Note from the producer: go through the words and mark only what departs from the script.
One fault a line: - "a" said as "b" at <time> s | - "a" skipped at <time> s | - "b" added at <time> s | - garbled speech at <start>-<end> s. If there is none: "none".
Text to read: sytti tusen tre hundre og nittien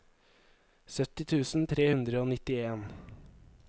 none